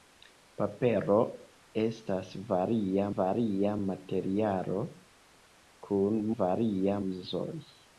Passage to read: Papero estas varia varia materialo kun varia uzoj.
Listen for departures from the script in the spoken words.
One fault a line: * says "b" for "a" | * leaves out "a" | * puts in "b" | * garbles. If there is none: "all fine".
all fine